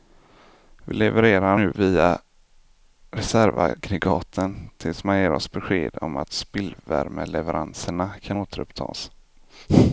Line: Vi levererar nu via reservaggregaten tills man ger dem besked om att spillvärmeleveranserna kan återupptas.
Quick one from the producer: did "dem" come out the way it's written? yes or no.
no